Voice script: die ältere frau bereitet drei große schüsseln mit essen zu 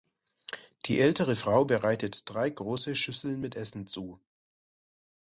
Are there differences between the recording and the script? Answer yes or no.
no